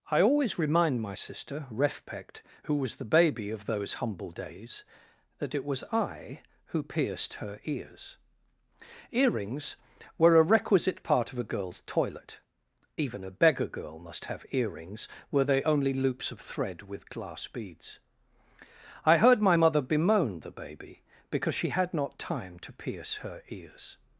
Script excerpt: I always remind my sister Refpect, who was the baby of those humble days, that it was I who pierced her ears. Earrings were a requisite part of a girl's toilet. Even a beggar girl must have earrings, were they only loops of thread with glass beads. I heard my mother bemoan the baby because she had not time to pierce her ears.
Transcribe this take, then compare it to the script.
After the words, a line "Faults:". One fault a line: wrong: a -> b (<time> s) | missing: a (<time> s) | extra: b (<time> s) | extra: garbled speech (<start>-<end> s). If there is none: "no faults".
I always remind my sister Refpect, who was the baby of those humble days, that it was I who pierced her ears. Earrings were a requisite part of a girl's toilet. Even a beggar girl must have earrings, were they only loops of thread with glass beads. I heard my mother bemoan the baby because she had not time to pierce her ears.
Faults:
no faults